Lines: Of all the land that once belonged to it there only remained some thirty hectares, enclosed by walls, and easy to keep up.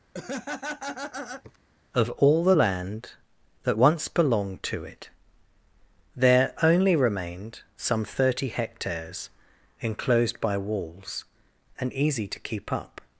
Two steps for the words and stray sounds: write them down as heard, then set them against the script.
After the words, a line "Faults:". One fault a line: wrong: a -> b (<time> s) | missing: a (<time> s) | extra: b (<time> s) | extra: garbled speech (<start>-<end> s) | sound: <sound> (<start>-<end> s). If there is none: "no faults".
Of all the land that once belonged to it there only remained some thirty hectares, enclosed by walls, and easy to keep up.
Faults:
sound: laugh (0.1-1.6 s)